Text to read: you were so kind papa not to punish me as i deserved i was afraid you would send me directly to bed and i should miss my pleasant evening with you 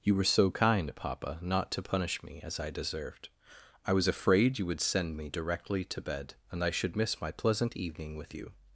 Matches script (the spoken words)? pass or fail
pass